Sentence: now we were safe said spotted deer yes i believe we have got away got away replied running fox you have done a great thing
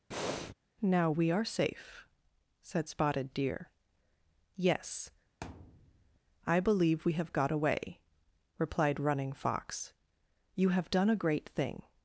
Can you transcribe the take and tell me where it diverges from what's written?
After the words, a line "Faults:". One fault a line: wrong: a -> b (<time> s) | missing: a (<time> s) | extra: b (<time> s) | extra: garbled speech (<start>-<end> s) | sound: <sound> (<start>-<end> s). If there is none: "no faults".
now we are safe said spotted deer yes i believe we have got away replied running fox you have done a great thing
Faults:
sound: breath (0.1-0.5 s)
wrong: were -> are (1.3 s)
sound: thud (5.4-6.2 s)
missing: got away (8.0 s)